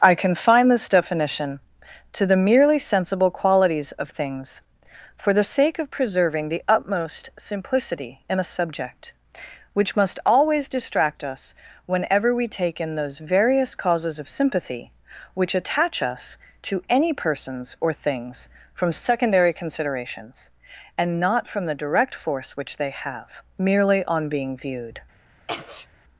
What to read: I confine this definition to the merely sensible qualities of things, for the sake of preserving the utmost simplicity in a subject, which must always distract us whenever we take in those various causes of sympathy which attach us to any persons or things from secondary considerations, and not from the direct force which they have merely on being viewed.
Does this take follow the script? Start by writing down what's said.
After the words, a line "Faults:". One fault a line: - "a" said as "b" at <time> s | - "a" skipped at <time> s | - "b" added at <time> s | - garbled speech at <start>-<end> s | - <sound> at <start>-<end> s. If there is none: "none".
I confine this definition to the merely sensible qualities of things, for the sake of preserving the utmost simplicity in a subject, which must always distract us whenever we take in those various causes of sympathy which attach us to any persons or things from secondary considerations, and not from the direct force which they have merely on being viewed.
Faults:
- sneeze at 25.5-25.9 s